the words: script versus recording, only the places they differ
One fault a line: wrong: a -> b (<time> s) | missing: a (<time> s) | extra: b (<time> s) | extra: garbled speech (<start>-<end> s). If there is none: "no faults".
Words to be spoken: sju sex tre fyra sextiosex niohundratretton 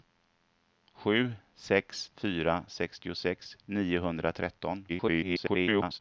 missing: tre (2.1 s)
extra: garbled speech (4.9-6.0 s)